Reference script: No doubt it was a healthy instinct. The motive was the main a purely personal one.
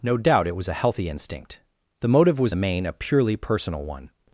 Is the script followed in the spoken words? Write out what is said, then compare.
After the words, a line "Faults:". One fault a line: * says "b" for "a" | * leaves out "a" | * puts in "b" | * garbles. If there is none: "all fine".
No doubt it was a healthy instinct. The motive was the main a purely personal one.
Faults:
all fine